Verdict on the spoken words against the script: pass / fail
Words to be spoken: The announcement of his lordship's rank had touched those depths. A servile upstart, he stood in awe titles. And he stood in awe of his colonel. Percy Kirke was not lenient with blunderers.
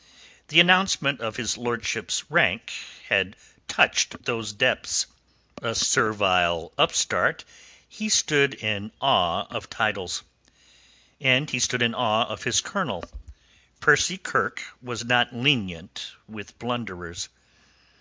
fail